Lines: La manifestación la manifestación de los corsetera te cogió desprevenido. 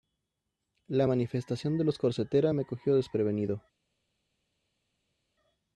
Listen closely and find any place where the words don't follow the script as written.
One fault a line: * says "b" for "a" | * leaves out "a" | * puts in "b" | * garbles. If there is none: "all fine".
* leaves out "la manifestación"
* says "me" for "te"